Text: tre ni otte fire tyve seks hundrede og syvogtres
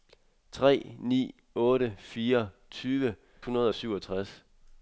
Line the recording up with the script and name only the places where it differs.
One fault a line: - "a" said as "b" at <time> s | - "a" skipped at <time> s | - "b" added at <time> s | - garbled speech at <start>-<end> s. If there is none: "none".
- "seks" skipped at 3.1 s